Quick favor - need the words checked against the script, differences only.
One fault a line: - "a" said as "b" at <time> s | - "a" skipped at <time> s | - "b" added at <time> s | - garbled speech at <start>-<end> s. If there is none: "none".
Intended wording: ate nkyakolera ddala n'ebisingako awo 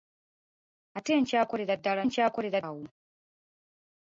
- "n'ebisingako" said as "nkyakolera" at 2.1 s